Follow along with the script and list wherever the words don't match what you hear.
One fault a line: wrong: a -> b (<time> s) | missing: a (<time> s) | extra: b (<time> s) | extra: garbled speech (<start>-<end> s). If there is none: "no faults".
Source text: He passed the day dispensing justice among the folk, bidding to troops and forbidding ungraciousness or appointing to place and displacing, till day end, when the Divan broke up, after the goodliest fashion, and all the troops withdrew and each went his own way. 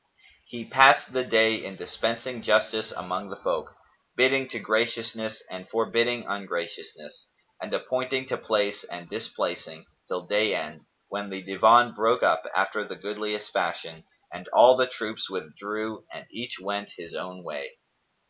extra: in (1.6 s)
wrong: troops -> graciousness (4.6 s)
wrong: or -> and (7.6 s)